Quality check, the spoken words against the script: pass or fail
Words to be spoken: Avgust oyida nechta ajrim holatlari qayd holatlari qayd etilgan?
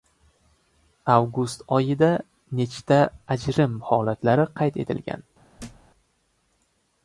fail